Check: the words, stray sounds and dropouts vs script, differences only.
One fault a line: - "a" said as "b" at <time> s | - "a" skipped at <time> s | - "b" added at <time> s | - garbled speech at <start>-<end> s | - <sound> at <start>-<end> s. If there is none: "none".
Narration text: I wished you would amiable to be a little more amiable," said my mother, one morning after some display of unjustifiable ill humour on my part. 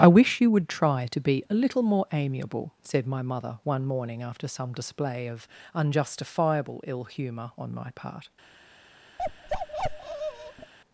- "wished" said as "wish" at 0.1 s
- "amiable" said as "try" at 0.7 s
- bark at 9.2-10.7 s